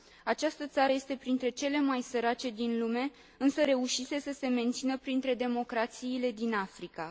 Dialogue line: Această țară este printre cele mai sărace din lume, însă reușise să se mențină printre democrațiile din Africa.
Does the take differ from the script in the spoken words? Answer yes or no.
no